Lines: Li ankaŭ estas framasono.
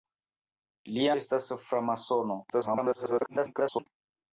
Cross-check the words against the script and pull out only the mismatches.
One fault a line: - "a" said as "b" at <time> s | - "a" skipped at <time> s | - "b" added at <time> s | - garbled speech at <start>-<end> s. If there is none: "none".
- "ankaŭ" skipped at 1.0 s
- garbled speech at 2.5-3.9 s